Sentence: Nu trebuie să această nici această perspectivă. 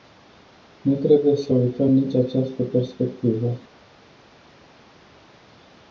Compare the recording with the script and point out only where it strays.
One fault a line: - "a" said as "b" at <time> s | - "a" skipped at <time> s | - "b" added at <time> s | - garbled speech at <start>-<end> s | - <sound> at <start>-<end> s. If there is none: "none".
- "această" said as "uităm" at 1.5 s